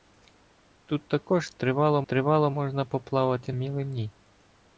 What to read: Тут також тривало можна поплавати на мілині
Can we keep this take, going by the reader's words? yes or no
no